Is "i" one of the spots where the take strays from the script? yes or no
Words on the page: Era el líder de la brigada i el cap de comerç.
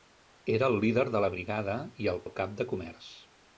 no